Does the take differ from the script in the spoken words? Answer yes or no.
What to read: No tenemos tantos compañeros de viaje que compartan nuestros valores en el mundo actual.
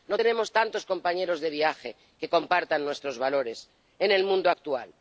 no